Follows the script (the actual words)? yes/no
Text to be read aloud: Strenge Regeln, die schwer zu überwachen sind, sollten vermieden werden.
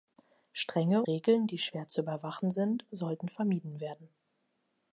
yes